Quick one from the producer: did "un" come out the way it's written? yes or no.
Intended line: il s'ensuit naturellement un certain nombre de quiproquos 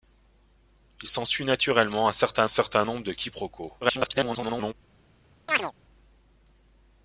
yes